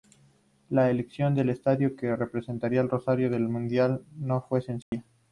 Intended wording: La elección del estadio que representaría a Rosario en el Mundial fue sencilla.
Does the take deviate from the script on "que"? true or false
false